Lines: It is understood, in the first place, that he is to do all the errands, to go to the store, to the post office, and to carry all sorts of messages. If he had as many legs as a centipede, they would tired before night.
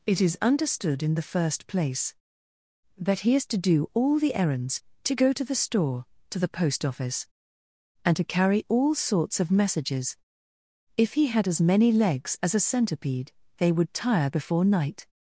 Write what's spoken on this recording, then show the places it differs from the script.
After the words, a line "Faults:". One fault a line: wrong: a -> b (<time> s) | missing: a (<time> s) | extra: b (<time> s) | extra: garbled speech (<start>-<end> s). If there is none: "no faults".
It is understood, in the first place, that he is to do all the errands, to go to the store, to the post office, and to carry all sorts of messages. If he had as many legs as a centipede, they would tire before night.
Faults:
wrong: tired -> tire (13.9 s)